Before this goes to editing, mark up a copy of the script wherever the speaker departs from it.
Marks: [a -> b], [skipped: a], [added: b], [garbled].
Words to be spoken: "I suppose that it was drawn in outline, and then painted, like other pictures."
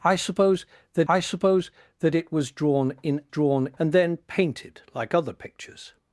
"I suppose that [added: I suppose that] it was drawn in [outline, -> drawn] and then painted, like other pictures."